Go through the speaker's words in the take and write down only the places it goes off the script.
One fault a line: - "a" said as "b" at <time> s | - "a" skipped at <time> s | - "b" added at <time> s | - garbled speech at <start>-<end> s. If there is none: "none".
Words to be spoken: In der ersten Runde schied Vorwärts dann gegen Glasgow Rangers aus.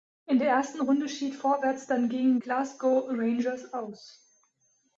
none